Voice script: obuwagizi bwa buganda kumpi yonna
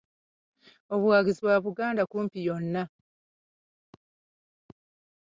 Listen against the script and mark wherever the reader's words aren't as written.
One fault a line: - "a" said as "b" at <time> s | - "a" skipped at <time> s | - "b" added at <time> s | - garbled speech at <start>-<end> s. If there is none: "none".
none